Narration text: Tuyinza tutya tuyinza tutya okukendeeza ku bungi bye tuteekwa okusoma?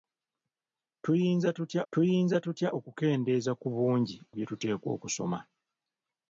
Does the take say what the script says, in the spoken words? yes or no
yes